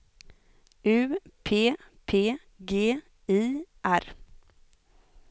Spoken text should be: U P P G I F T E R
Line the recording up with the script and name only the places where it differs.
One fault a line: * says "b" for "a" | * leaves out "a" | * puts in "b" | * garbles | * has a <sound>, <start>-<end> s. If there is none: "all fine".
* leaves out "F T E"